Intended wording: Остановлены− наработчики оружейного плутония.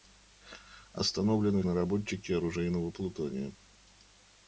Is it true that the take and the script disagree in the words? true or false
false